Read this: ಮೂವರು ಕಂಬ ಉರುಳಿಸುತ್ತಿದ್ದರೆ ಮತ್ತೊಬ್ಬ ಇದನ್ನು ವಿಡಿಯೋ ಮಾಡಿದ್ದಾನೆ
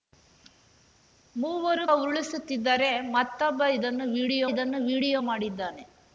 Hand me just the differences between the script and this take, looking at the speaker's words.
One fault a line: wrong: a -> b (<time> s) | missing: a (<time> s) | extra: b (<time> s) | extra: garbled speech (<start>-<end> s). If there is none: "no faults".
missing: ಕಂಬ (1.9 s)
extra: ಇದನ್ನು ವಿಡಿಯೋ (4.5 s)